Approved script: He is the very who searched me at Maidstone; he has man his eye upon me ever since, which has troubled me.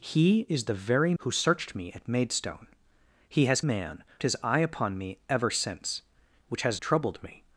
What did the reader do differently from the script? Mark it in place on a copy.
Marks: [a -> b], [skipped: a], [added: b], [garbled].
He is the very who searched me at Maidstone; he has man his eye upon me ever since, which has troubled me.